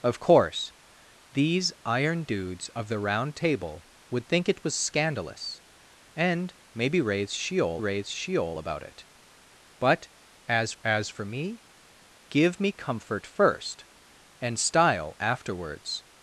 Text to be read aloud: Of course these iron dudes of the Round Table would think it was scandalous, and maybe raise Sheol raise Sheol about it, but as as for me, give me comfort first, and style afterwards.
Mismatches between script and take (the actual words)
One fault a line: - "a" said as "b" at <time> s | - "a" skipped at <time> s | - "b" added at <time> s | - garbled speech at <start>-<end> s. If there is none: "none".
none